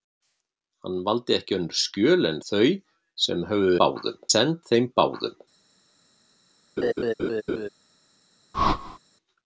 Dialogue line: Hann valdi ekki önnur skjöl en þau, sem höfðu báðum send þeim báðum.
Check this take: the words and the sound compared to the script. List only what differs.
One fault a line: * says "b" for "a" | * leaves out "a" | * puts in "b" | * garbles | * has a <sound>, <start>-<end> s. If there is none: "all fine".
* has a laugh, 6.8-7.7 s
* has a whoosh, 8.5-9.0 s